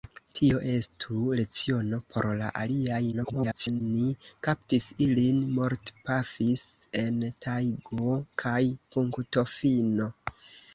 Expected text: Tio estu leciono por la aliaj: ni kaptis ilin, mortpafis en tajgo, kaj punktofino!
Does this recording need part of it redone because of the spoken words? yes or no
yes